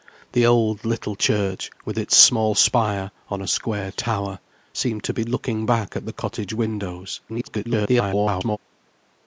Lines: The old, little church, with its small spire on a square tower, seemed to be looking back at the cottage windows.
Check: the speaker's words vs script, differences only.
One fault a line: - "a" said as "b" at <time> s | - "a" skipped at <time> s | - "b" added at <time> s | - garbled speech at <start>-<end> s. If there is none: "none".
- garbled speech at 7.3-8.6 s